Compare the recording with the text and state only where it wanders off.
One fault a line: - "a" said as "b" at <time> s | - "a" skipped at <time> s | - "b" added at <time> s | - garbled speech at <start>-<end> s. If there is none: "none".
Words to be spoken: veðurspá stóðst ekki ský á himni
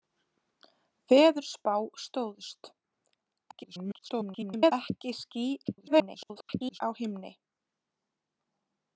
- garbled speech at 3.5-4.7 s
- garbled speech at 5.6-6.8 s